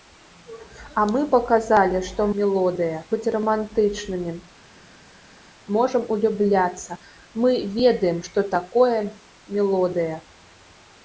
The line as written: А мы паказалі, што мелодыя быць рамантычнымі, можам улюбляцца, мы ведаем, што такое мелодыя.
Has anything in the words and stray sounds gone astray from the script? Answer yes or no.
no